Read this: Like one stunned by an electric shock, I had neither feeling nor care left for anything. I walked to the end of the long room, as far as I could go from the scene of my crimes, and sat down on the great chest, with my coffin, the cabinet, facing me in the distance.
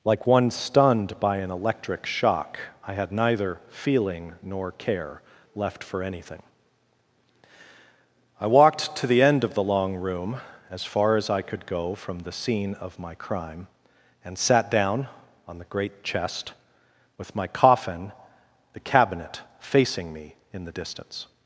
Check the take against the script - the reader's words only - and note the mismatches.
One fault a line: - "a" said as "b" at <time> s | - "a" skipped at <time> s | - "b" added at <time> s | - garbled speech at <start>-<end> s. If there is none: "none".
- "crimes" said as "crime" at 13.1 s